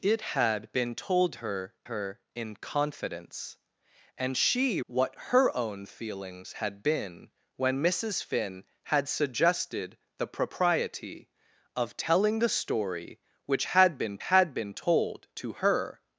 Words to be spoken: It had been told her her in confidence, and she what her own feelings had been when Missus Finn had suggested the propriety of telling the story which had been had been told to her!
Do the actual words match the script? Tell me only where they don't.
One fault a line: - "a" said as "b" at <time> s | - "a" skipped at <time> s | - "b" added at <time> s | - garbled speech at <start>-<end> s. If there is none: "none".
none